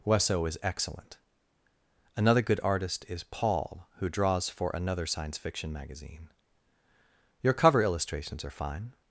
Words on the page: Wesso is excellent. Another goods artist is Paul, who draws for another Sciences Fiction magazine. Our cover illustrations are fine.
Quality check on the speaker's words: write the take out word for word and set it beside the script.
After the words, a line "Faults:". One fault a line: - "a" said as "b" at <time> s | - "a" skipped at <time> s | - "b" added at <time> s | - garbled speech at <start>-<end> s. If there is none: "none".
Wesso is excellent. Another good artist is Paul, who draws for another Science Fiction magazine. Your cover illustrations are fine.
Faults:
- "goods" said as "good" at 2.4 s
- "Sciences" said as "Science" at 5.0 s
- "Our" said as "Your" at 7.4 s